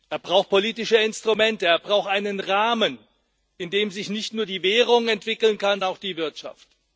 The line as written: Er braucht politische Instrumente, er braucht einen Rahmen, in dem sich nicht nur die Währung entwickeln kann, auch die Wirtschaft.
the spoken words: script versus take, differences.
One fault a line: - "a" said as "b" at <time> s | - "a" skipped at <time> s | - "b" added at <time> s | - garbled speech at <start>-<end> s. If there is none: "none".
none